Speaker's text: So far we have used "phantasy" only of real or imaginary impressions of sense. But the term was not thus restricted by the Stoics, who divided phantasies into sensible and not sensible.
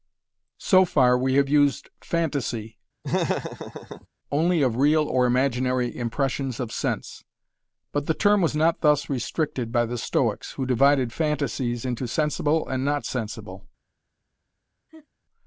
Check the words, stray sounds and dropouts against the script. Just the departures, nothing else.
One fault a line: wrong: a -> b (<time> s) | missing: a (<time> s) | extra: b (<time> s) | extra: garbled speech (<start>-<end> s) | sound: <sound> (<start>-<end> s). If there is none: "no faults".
sound: laugh (3.0-4.1 s)
sound: laugh (14.9-15.1 s)